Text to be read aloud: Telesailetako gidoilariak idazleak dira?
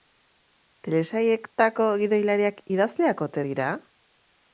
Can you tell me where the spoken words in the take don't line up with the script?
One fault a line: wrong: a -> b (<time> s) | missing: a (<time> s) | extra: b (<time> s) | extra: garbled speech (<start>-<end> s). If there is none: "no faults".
extra: ote (3.3 s)